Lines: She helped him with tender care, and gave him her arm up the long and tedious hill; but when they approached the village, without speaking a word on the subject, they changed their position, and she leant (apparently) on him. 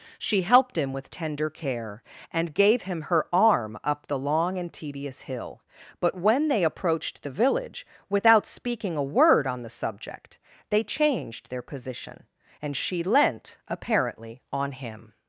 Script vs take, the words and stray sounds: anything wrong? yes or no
no